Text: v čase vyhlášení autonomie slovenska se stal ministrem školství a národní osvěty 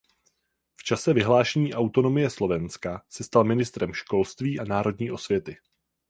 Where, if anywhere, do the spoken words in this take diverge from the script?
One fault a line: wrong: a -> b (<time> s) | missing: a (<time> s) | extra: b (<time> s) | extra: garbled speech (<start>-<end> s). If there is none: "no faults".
no faults